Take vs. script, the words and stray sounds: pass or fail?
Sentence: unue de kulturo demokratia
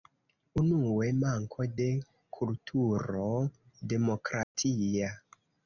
fail